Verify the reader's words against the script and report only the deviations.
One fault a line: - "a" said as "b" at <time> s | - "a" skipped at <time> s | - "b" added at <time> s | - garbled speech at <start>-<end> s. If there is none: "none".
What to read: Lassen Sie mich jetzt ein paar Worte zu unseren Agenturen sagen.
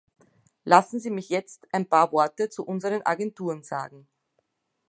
none